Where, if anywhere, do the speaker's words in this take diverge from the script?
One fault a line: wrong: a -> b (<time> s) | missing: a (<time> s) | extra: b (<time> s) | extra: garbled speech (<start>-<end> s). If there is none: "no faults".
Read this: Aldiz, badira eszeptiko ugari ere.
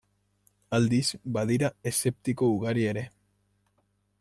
no faults